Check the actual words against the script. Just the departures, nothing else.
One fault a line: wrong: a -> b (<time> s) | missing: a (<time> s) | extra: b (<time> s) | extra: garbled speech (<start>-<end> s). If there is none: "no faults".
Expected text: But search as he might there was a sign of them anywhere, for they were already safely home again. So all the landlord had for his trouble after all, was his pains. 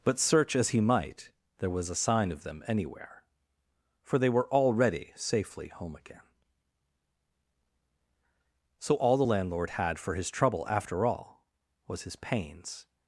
no faults